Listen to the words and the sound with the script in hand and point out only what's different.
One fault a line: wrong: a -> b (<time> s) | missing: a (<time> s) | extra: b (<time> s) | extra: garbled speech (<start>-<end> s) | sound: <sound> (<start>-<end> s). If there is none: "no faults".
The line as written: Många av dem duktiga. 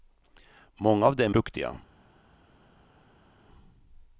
no faults